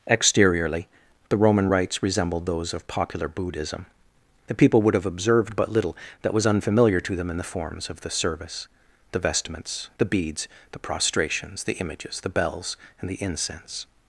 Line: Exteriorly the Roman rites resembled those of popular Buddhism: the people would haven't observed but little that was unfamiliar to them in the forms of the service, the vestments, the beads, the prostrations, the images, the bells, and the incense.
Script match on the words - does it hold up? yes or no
no